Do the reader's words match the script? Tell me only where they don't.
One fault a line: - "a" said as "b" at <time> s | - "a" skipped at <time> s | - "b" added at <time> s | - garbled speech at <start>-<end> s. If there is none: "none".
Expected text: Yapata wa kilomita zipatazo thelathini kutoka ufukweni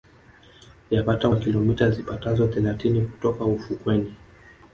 none